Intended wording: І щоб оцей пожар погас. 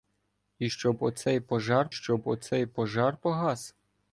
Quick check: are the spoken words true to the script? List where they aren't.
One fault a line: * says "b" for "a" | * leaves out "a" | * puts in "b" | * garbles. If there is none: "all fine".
* puts in "щоб оцей пожар"